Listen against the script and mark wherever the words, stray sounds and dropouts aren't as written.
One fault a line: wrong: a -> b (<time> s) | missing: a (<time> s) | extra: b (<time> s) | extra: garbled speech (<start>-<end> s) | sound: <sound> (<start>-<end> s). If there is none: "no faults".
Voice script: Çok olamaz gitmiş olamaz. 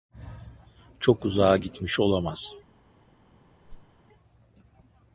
wrong: olamaz -> uzağa (1.2 s)
sound: whoosh (3.6-4.0 s)